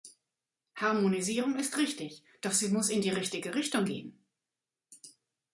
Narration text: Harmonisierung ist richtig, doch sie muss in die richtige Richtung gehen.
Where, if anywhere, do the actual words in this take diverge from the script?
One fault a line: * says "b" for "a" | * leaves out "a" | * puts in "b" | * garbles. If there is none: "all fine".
all fine